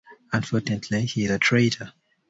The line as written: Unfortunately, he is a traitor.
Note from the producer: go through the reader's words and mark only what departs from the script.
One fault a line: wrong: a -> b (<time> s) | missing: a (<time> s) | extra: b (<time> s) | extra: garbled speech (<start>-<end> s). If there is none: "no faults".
no faults